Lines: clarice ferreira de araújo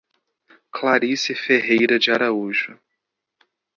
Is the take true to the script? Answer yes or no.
yes